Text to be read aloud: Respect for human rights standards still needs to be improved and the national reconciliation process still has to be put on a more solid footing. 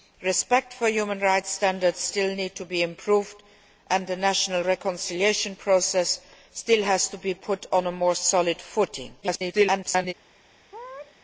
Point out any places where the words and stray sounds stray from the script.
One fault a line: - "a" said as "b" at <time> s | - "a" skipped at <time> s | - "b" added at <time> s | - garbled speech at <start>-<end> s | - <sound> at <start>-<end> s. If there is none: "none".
- garbled speech at 9.2-10.1 s
- sneeze at 10.7-11.2 s